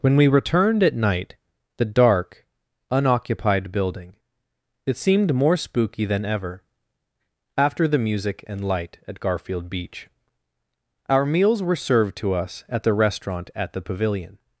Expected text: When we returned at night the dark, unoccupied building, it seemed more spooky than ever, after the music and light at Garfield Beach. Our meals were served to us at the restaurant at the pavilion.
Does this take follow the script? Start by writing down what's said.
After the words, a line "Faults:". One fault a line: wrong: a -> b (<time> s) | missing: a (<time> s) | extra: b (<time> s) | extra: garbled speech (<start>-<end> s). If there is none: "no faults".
When we returned at night the dark, unoccupied building, it seemed more spooky than ever, after the music and light at Garfield Beach. Our meals were served to us at the restaurant at the pavilion.
Faults:
no faults